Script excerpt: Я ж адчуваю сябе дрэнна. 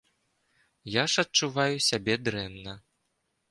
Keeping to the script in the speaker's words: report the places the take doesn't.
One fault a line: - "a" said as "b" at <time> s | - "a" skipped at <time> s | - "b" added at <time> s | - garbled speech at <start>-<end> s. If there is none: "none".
none